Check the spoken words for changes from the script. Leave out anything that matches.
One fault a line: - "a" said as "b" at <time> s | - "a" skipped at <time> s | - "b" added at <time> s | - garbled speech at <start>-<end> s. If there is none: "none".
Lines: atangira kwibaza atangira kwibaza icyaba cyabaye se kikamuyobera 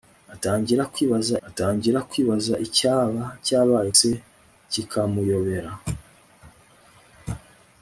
none